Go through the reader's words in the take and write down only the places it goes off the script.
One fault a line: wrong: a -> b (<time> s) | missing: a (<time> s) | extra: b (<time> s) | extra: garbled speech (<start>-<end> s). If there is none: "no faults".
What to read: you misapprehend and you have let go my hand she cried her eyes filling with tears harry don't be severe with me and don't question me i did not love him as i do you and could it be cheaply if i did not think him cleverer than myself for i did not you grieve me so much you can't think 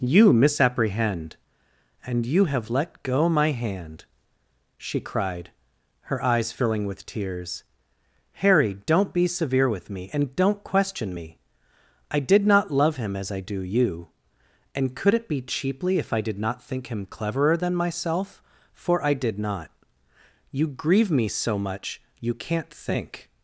no faults